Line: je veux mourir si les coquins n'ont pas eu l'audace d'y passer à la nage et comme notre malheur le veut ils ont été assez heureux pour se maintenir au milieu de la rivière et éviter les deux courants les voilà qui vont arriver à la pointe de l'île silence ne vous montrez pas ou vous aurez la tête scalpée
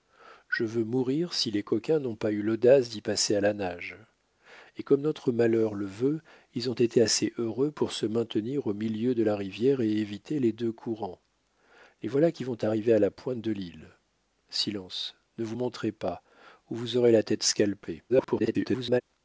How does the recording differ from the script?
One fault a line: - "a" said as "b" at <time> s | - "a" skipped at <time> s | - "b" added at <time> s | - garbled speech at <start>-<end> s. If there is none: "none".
- garbled speech at 18.1-19.0 s